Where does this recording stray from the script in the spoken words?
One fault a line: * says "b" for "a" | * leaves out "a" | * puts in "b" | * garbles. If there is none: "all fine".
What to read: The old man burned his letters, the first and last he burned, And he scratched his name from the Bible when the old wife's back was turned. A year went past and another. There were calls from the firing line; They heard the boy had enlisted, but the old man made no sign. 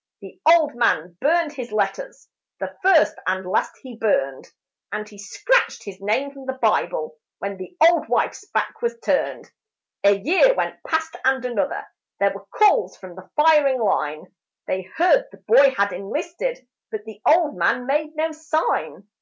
all fine